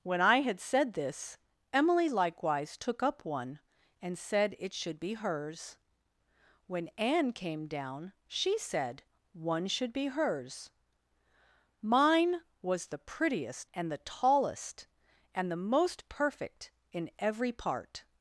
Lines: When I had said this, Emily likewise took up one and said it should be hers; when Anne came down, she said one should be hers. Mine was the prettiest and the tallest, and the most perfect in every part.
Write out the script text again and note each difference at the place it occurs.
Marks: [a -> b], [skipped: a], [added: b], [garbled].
When I had said this, Emily likewise took up one and said it should be hers; when Anne came down, she said one should be hers. Mine was the prettiest and the tallest, and the most perfect in every part.